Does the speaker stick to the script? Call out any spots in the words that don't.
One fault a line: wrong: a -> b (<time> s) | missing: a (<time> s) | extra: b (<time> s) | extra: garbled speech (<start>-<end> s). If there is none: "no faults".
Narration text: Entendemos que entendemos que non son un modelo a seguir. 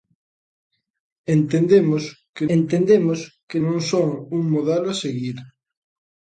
no faults